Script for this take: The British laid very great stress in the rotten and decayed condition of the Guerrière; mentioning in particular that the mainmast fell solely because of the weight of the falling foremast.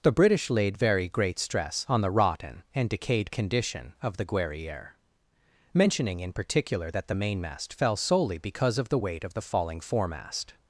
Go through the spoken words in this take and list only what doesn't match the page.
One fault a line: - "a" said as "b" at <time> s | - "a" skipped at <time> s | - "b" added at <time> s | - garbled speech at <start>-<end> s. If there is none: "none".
- "in" said as "on" at 1.9 s